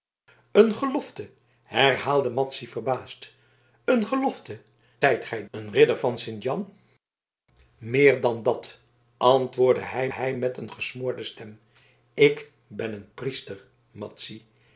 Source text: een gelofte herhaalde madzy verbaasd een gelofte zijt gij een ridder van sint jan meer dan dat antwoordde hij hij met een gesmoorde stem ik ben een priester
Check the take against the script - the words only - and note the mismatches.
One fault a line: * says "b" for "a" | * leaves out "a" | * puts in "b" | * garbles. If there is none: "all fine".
all fine